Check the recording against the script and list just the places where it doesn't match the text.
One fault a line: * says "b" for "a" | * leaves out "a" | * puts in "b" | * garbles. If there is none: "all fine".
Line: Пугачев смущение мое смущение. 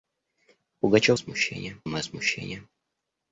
all fine